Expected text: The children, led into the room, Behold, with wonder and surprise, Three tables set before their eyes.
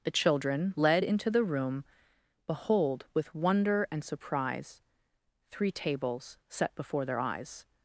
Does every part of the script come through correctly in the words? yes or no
yes